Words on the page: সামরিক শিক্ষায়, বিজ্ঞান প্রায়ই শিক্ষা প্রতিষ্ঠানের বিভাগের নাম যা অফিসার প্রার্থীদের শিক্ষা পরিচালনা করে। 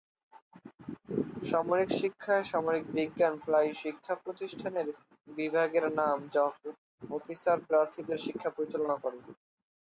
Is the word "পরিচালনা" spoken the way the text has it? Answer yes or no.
yes